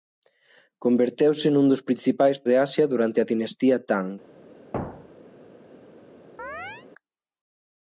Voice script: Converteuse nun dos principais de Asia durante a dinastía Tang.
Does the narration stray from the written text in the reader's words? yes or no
no